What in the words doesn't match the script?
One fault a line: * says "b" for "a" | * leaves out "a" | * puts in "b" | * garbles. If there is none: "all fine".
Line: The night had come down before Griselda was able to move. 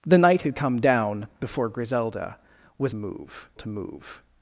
* says "move" for "able"